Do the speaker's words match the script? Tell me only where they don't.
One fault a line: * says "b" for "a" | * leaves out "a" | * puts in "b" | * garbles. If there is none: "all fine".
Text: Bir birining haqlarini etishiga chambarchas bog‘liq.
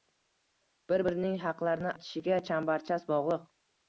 all fine